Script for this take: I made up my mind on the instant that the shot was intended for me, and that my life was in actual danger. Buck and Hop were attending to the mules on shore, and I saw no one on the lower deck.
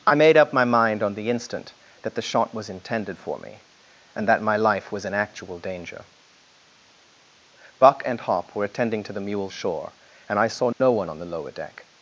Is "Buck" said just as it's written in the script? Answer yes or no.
yes